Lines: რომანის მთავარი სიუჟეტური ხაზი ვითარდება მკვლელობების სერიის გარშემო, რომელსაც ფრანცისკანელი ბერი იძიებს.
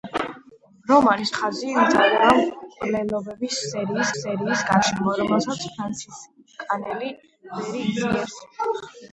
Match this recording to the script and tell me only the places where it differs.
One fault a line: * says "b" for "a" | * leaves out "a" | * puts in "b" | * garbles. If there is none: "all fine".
* leaves out "მთავარი სიუჟეტური"
* puts in "სერიის"